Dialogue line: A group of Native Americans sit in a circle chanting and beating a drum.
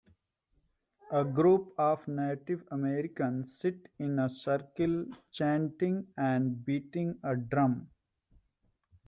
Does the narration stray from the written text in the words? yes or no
no